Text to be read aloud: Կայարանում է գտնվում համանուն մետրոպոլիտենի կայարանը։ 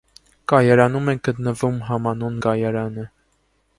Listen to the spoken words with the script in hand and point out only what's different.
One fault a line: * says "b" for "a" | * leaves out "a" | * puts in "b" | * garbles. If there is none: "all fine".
* leaves out "մետրոպոլիտենի"